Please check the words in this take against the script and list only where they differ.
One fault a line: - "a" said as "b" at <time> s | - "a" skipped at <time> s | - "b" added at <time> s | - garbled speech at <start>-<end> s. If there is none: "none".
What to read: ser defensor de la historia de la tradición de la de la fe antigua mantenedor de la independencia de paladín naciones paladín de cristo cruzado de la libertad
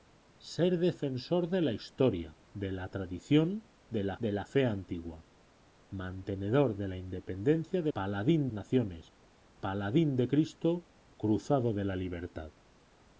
none